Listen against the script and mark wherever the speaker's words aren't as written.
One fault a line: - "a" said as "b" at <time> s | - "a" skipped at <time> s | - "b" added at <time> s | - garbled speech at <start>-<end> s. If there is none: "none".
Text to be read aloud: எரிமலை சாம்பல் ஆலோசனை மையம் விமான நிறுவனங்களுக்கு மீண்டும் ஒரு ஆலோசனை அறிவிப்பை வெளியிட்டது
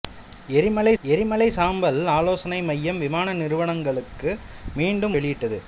- "எரிமலை" added at 1.0 s
- "ஒரு ஆலோசனை அறிவிப்பை" skipped at 5.2 s